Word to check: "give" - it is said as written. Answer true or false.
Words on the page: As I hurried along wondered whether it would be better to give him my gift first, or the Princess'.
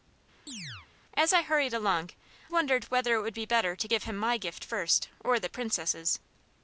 true